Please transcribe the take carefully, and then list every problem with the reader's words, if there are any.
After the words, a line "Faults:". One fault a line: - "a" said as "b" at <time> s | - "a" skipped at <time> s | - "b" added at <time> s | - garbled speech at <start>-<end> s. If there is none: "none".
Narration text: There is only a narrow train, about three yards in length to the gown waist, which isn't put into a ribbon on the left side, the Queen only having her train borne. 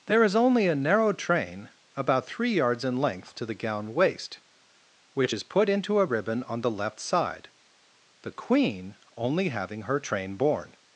There is only a narrow train, about three yards in length to the gown waist, which is put into a ribbon on the left side, the Queen only having her train borne.
Faults:
- "isn't" said as "is" at 5.3 s